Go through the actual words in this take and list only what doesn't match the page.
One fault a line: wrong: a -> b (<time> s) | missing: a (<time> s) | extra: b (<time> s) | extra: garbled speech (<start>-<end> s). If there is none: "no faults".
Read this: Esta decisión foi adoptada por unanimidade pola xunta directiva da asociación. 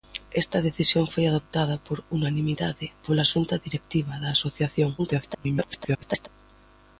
extra: garbled speech (5.0-6.3 s)